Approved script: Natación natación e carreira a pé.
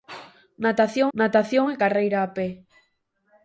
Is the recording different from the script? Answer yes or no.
no